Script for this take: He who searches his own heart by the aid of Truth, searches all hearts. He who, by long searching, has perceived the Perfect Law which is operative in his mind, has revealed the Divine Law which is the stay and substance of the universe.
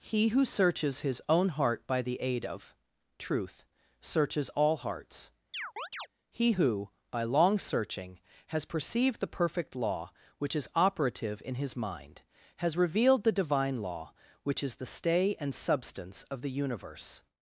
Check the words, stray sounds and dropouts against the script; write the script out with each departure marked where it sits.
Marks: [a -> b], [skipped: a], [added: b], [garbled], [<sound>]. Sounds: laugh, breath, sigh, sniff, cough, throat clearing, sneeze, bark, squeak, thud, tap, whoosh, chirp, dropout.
He who searches his own heart by the aid of Truth, searches all hearts. [chirp] He who, by long searching, has perceived the Perfect Law which is operative in his mind, has revealed the Divine Law which is the stay and substance of the universe.